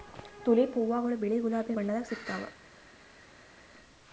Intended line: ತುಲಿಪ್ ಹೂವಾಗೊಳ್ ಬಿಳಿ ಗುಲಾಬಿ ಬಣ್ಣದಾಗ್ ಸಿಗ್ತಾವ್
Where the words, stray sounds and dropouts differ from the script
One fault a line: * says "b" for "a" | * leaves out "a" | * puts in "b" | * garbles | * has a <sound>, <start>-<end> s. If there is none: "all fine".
all fine